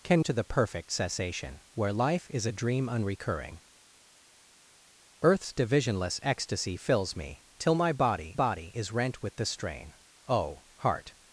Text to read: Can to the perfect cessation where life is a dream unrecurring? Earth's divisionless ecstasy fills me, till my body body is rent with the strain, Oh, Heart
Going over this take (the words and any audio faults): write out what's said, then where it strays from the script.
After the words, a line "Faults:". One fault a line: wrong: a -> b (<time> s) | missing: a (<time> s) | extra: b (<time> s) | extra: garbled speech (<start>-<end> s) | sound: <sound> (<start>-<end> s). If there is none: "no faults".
Can to the perfect cessation where life is a dream unrecurring? Earth's divisionless ecstasy fills me, till my body body is rent with the strain, Oh, Heart
Faults:
no faults